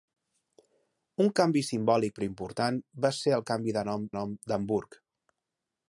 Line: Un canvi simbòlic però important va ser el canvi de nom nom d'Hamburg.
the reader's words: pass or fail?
pass